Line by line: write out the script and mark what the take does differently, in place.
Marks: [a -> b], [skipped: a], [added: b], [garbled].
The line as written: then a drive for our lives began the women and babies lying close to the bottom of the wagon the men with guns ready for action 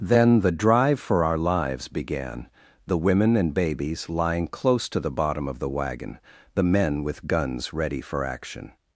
then [a -> the] drive for our lives began the women and babies lying close to the bottom of the wagon the men with guns ready for action